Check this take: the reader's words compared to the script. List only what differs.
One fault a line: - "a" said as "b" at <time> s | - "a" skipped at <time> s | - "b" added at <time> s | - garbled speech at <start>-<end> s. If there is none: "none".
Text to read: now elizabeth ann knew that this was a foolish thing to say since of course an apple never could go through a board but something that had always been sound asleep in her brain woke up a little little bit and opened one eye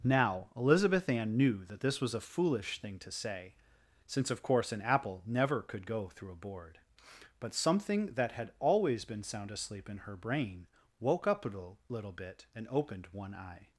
none